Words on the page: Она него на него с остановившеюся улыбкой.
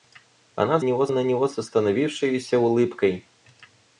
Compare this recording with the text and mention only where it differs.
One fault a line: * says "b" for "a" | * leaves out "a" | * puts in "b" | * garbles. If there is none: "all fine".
all fine